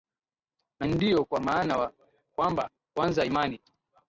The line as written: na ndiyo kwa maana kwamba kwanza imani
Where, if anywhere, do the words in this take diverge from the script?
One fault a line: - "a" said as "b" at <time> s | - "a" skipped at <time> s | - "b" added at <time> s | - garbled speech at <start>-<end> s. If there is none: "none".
none